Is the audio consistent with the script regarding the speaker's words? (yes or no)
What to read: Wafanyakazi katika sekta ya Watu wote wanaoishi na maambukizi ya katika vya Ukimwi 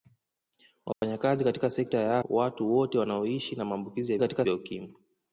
yes